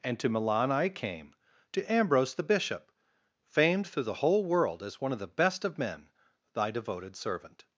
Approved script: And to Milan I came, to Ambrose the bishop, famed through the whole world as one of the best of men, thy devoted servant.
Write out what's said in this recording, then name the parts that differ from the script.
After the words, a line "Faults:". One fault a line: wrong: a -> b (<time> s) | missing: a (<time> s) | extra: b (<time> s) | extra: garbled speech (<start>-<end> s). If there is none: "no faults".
And to Milan I came, to Ambrose the bishop, famed through the whole world as one of the best of men, thy devoted servant.
Faults:
no faults